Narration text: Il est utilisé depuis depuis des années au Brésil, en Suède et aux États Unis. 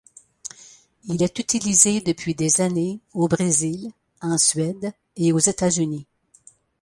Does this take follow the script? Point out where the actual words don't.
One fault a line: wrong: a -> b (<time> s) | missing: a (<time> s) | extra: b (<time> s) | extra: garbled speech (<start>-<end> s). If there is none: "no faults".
missing: depuis (2.3 s)